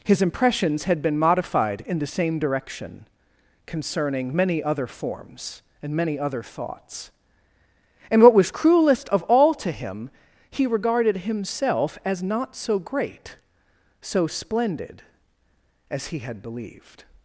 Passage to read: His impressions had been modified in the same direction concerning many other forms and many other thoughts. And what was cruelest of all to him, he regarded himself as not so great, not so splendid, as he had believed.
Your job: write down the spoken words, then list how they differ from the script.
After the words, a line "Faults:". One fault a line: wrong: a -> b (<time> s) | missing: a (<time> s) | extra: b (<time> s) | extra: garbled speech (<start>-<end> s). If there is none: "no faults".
His impressions had been modified in the same direction concerning many other forms and many other thoughts. And what was cruelest of all to him, he regarded himself as not so great, so splendid, as he had believed.
Faults:
missing: not (13.4 s)